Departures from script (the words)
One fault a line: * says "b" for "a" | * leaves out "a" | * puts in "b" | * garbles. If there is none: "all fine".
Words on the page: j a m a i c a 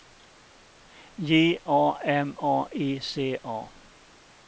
all fine